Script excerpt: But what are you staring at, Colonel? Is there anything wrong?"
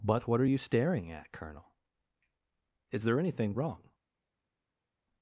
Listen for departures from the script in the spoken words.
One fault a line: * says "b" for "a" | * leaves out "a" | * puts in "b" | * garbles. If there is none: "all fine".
all fine